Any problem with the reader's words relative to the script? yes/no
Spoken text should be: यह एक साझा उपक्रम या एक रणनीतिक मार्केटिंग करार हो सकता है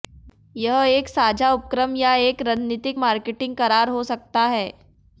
no